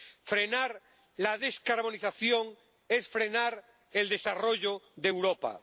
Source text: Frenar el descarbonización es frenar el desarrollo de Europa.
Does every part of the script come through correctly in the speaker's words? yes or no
no